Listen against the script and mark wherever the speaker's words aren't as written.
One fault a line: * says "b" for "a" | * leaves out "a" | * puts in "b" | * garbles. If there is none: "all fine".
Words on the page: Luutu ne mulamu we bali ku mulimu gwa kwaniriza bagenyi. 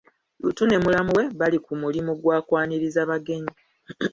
all fine